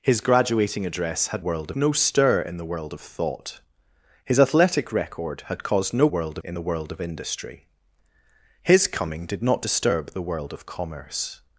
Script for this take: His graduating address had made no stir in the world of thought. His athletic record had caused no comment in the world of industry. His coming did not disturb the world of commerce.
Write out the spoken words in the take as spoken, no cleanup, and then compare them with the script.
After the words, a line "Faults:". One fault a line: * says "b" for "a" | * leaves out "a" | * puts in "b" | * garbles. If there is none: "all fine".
His graduating address had world no stir in the world of thought. His athletic record had caused no world in the world of industry. His coming did not disturb the world of commerce.
Faults:
* says "world" for "made"
* says "world" for "comment"